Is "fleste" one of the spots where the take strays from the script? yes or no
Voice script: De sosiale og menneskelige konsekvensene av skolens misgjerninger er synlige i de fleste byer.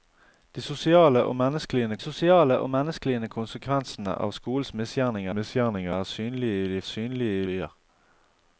yes